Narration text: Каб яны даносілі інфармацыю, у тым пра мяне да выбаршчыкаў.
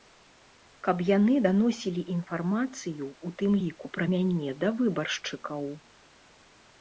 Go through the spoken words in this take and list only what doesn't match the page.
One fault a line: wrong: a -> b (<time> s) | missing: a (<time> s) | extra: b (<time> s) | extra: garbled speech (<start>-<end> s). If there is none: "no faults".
extra: ліку (3.6 s)